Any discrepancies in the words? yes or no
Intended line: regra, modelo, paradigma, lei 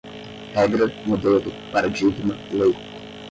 no